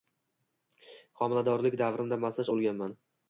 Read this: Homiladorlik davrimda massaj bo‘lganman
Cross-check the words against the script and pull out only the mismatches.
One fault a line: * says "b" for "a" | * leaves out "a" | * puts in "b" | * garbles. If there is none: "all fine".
all fine